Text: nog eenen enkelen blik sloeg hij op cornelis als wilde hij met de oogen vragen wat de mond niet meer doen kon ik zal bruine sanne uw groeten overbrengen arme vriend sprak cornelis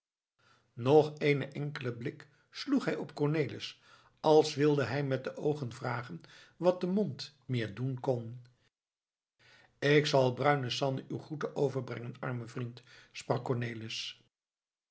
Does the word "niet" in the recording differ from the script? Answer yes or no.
yes